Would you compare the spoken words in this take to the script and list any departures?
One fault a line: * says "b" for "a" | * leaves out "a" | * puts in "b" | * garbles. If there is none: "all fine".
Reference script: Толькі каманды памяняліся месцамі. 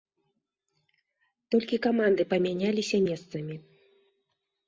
all fine